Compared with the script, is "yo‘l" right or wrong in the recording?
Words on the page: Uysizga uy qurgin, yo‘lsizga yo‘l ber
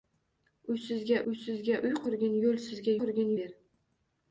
wrong